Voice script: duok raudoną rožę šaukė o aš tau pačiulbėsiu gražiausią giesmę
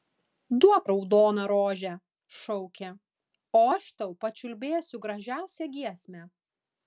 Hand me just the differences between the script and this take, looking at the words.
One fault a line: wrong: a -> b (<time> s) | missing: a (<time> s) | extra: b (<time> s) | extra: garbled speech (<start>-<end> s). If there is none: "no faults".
no faults